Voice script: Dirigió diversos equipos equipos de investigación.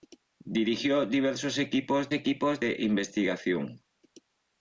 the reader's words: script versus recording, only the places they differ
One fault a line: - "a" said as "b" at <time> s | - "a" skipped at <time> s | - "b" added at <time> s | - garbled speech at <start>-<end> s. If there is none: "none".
none